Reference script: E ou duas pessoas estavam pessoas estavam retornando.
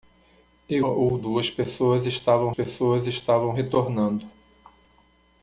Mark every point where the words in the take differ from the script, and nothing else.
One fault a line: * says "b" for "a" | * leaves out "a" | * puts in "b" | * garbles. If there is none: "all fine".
all fine